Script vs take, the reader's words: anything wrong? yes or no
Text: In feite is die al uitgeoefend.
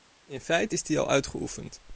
no